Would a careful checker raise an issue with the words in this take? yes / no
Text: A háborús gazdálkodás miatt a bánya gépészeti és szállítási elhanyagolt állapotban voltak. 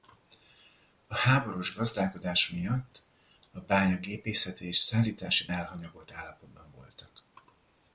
no